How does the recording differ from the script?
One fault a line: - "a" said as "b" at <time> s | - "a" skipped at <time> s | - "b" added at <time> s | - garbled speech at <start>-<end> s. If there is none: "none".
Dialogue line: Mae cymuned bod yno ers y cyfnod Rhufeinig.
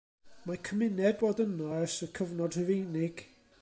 none